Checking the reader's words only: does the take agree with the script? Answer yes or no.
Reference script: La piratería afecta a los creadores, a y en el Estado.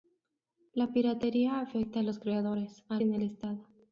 yes